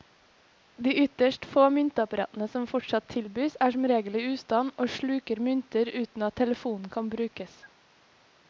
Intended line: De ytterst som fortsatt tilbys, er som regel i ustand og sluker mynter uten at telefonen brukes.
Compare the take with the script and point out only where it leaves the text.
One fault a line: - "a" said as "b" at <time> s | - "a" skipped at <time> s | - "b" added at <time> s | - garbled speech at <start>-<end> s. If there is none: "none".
- "få myntapparatene" added at 1.5 s
- "kan" added at 7.0 s